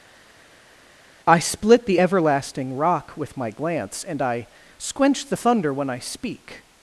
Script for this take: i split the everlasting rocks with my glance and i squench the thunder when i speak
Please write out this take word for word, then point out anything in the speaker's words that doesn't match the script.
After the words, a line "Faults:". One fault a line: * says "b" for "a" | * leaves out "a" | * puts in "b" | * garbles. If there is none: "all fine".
i split the everlasting rock with my glance and i squench the thunder when i speak
Faults:
* says "rock" for "rocks"